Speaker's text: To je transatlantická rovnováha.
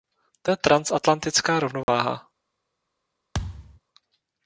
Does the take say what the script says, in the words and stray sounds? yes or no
no